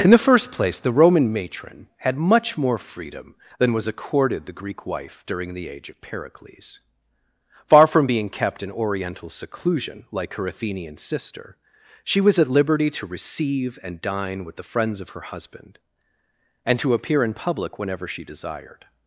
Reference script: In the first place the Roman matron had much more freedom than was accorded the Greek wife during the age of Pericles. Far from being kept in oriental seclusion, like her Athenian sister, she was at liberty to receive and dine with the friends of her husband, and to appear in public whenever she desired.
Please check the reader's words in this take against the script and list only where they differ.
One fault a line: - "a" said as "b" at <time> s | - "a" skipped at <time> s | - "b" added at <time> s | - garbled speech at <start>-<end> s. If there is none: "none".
none